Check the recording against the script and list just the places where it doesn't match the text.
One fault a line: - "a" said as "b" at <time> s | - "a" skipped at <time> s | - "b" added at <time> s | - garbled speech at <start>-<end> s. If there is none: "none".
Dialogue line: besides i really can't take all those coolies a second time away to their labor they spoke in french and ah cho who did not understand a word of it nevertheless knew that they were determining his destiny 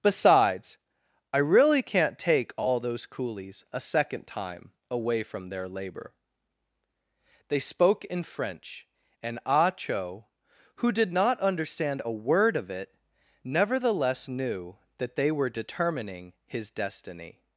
- "to" said as "from" at 5.2 s